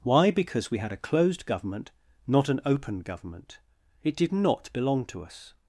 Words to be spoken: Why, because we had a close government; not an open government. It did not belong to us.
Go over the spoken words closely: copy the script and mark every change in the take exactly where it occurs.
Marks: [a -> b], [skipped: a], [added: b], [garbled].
Why, because we had a [close -> closed] government; not an open government. It did not belong to us.